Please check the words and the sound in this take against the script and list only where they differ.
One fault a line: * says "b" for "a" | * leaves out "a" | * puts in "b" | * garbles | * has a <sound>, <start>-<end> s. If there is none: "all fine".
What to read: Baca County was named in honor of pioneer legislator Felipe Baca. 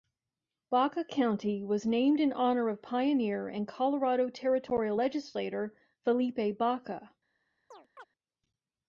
* puts in "and Colorado territorial"
* has a chirp, 7.7-8.0 s